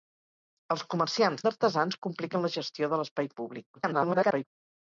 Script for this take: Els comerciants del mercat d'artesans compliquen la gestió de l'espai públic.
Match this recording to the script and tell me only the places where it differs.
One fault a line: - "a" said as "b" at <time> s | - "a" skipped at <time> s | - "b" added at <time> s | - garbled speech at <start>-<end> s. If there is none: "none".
- "del mercat" skipped at 1.4 s
- garbled speech at 3.8-4.5 s